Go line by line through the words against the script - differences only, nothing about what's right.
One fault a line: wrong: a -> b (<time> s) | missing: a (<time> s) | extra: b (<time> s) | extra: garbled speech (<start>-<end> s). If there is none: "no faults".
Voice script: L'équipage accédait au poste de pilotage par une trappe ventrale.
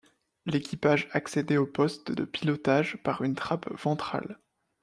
no faults